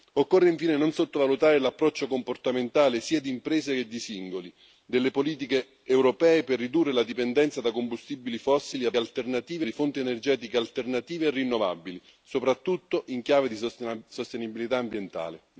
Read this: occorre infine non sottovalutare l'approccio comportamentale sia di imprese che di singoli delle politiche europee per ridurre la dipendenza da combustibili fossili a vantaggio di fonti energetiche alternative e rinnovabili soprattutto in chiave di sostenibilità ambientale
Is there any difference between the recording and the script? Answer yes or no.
yes